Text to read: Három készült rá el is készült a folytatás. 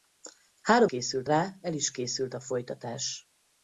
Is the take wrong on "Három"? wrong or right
right